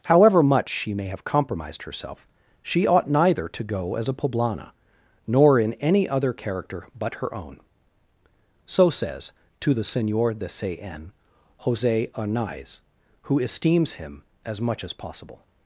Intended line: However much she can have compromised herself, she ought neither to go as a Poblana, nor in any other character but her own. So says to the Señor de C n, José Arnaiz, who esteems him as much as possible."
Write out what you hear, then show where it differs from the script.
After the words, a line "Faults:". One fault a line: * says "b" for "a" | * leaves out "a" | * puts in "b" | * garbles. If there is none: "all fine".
However much she may have compromised herself, she ought neither to go as a Poblana, nor in any other character but her own. So says to the Señor de C n, José Arnaiz, who esteems him as much as possible."
Faults:
* says "may" for "can"